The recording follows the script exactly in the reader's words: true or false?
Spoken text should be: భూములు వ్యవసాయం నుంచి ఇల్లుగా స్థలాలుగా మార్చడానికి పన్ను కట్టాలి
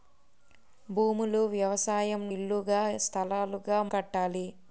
false